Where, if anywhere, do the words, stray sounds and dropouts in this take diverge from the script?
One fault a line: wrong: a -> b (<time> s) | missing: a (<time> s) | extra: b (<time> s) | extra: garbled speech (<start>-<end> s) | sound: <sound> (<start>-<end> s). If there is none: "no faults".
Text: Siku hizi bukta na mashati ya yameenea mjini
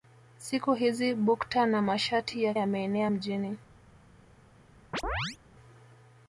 sound: chirp (4.9-5.4 s)